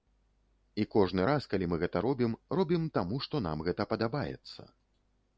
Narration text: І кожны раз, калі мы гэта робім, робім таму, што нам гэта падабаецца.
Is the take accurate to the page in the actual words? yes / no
yes